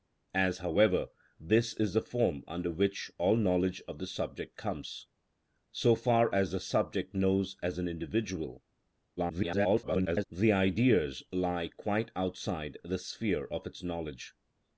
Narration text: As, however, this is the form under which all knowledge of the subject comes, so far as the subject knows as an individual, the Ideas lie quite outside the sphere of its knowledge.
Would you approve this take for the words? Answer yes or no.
no